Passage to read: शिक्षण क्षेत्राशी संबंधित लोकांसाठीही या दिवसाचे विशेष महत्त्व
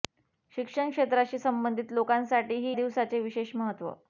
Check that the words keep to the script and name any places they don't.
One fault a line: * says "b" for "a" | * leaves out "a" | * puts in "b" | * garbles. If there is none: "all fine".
* leaves out "या"